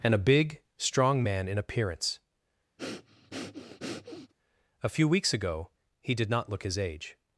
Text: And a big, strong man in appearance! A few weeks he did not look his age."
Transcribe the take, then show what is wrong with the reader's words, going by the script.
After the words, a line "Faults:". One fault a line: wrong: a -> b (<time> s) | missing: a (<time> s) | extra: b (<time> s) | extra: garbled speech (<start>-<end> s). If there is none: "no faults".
And a big, strong man in appearance! A few weeks ago he did not look his age."
Faults:
extra: ago (5.3 s)